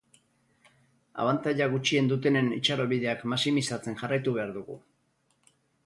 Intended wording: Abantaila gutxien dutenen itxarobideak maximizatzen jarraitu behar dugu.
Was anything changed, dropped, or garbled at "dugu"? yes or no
no